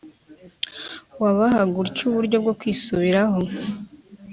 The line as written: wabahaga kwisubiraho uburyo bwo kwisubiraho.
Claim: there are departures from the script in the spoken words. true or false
true